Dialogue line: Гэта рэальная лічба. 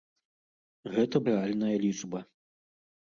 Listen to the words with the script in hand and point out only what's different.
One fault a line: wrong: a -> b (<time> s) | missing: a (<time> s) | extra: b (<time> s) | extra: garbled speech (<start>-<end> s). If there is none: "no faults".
no faults